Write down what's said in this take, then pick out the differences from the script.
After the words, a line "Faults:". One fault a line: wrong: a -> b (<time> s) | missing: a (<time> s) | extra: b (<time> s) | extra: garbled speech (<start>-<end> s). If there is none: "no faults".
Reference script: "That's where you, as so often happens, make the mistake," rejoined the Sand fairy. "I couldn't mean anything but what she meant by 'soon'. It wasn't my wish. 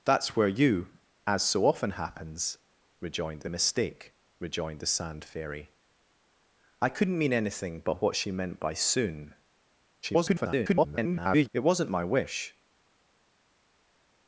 "That's where you, as so often happens, rejoined the mistake," rejoined the Sand fairy. "I couldn't mean anything but what she meant by 'soon'. [garbled] It wasn't my wish.
Faults:
wrong: make -> rejoined (3.0 s)
extra: garbled speech (10.0-11.5 s)